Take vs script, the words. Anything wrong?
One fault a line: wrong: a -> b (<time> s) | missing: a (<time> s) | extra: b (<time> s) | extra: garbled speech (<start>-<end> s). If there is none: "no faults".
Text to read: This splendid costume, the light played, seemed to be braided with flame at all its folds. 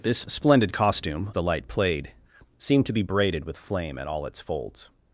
no faults